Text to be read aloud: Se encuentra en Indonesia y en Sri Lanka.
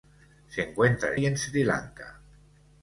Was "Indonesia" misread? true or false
true